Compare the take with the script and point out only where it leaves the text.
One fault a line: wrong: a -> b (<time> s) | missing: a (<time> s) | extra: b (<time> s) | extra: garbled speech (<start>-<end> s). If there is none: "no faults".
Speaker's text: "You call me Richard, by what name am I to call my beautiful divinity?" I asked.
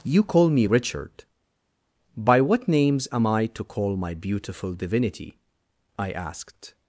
wrong: name -> names (2.7 s)